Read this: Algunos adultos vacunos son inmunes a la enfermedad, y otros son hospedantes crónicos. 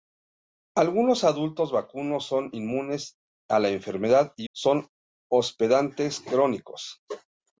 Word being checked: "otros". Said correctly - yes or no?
no